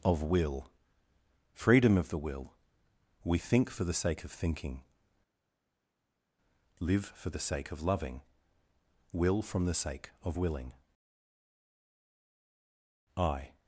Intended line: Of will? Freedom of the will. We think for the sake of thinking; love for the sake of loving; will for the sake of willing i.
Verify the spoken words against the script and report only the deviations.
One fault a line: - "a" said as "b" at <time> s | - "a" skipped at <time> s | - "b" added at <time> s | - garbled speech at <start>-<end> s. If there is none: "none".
- "love" said as "live" at 6.8 s
- "for" said as "from" at 9.4 s